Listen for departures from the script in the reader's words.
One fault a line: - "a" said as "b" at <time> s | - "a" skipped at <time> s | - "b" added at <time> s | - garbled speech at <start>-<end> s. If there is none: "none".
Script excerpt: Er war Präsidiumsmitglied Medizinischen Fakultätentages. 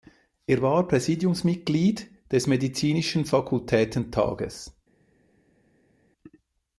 - "des" added at 2.3 s